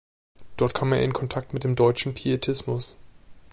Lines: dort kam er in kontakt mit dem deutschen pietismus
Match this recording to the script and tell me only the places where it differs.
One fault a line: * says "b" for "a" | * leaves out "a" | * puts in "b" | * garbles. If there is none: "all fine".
all fine